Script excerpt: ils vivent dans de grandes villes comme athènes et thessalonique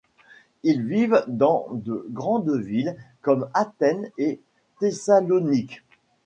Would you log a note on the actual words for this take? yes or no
no